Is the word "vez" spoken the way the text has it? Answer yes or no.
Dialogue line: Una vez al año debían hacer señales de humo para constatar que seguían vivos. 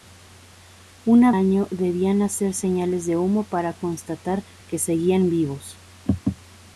no